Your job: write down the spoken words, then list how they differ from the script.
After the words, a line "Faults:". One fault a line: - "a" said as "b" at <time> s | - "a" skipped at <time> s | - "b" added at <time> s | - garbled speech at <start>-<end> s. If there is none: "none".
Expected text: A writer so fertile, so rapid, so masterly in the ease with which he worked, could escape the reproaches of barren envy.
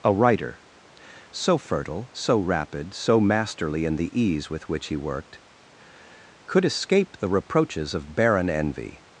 A writer so fertile, so rapid, so masterly in the ease with which he worked, could escape the reproaches of barren envy.
Faults:
none